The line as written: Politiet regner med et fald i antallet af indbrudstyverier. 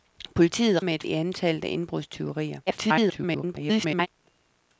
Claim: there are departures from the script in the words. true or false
true